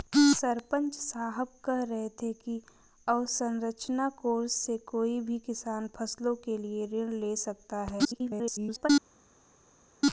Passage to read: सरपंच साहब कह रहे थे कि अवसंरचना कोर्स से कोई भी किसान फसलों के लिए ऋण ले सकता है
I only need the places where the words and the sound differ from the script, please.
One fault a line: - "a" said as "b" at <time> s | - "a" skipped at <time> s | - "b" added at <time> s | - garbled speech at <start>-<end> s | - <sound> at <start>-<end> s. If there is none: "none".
- garbled speech at 8.0-8.9 s